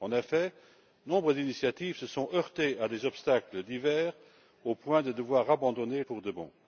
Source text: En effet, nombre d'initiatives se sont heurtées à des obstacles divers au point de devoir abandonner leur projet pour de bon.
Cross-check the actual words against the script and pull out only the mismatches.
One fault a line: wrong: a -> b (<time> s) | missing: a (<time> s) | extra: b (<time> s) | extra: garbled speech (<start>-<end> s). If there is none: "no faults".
missing: leur projet (6.0 s)